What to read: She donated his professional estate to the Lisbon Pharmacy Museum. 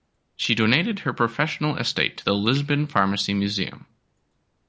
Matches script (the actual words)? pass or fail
fail